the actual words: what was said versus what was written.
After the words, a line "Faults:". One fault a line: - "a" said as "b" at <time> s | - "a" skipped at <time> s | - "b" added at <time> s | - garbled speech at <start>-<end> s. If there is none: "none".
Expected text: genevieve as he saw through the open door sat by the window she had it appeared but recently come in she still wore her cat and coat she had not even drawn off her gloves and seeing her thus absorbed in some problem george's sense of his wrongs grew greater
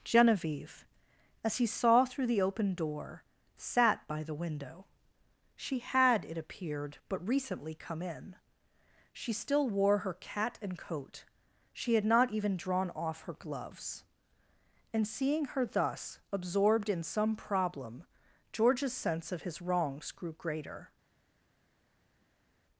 genevieve as he saw through the open door sat by the window she had it appeared but recently come in she still wore her cat and coat she had not even drawn off her gloves and seeing her thus absorbed in some problem george's sense of his wrongs grew greater
Faults:
none